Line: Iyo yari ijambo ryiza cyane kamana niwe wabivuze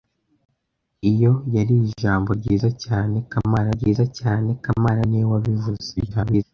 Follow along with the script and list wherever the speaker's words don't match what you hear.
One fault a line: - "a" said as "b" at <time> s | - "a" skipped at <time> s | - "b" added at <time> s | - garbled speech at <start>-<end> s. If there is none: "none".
- "ryiza cyane kamana" added at 3.8 s
- garbled speech at 6.0-6.4 s